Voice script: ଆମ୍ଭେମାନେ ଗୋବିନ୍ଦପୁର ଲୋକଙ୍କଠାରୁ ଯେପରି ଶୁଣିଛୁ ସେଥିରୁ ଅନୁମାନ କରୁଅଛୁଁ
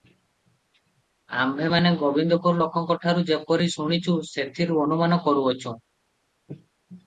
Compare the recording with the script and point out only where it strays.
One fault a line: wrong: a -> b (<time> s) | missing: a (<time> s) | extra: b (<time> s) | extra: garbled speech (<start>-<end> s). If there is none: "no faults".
no faults